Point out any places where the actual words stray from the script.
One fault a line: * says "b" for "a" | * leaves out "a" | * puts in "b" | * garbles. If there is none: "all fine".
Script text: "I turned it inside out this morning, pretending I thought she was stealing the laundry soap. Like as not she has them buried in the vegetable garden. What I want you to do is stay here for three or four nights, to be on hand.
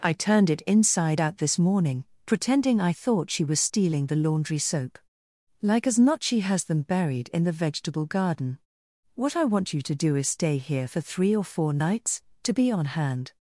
all fine